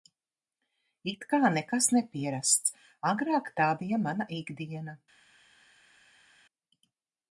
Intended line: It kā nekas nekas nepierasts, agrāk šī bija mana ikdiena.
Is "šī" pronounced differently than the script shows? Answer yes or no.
yes